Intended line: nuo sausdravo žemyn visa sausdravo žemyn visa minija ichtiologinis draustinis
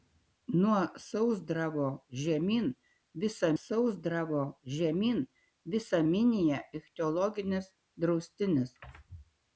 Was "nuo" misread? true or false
false